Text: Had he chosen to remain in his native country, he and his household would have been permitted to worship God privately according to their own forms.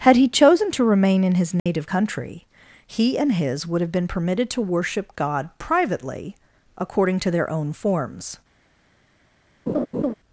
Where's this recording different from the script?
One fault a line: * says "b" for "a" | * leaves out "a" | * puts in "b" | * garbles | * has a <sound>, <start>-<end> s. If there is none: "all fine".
* has a dropout, 1.6-1.7 s
* leaves out "household"
* has a laugh, 9.7-10.1 s